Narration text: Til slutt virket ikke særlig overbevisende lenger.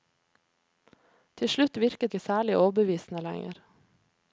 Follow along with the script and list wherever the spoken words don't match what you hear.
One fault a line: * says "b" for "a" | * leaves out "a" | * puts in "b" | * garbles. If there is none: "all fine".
all fine